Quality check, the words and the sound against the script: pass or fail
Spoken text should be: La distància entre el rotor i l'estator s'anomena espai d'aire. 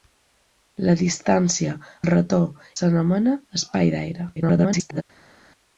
fail